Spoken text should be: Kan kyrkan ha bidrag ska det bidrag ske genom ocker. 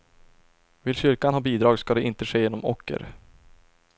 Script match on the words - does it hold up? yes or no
no